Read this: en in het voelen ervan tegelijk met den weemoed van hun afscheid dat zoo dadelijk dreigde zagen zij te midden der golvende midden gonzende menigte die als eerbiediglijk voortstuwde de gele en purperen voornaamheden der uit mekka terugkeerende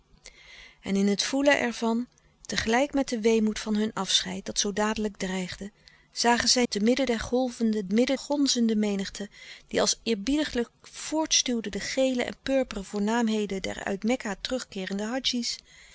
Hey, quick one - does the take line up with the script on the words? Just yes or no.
yes